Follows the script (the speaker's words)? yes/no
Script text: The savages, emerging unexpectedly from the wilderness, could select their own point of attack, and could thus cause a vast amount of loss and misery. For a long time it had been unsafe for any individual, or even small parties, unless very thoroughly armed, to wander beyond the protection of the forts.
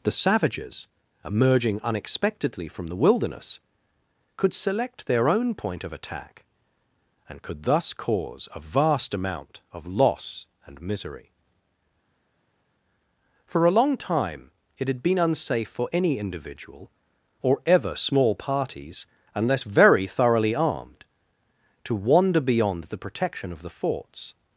no